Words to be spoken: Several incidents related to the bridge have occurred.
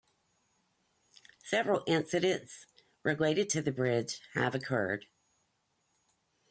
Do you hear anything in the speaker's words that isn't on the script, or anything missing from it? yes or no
no